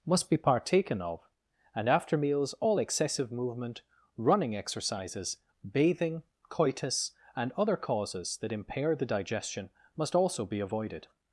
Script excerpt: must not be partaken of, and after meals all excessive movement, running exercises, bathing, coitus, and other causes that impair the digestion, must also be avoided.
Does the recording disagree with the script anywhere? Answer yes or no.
yes